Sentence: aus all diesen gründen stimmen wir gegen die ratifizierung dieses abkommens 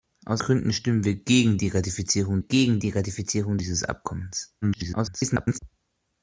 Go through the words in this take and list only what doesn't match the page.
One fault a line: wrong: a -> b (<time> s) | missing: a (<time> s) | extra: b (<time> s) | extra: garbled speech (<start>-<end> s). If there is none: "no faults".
missing: all diesen (0.4 s)
extra: gegen die ratifizierung (2.4 s)
extra: garbled speech (4.6-5.6 s)